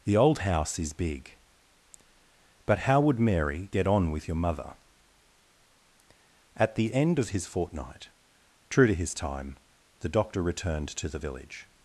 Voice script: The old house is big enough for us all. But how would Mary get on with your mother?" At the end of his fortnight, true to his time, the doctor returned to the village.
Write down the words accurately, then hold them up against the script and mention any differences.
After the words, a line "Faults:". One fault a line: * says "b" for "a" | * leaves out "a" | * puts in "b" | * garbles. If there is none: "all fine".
The old house is big. But how would Mary get on with your mother?" At the end of his fortnight, true to his time, the doctor returned to the village.
Faults:
* leaves out "enough for us all"